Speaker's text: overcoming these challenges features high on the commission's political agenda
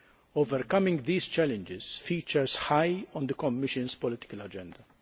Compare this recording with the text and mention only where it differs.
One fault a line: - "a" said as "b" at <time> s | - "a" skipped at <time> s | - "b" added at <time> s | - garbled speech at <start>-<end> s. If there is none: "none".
none